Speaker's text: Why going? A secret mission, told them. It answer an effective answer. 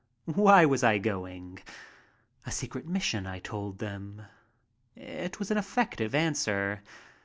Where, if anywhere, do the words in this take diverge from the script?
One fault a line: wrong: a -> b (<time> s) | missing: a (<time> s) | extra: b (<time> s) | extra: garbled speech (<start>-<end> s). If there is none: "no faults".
extra: was I (0.7 s)
extra: I (3.3 s)
wrong: answer -> was (5.4 s)